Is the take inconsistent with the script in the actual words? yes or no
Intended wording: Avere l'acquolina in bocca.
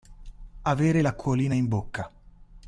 no